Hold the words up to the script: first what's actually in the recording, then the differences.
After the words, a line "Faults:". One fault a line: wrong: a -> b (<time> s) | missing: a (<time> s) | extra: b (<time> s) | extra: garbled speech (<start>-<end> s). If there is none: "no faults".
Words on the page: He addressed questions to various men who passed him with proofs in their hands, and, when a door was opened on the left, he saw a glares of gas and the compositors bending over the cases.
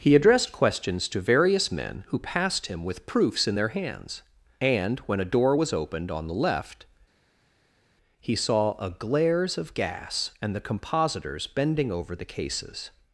He addressed questions to various men who passed him with proofs in their hands, and, when a door was opened on the left, he saw a glares of gas and the compositors bending over the cases.
Faults:
no faults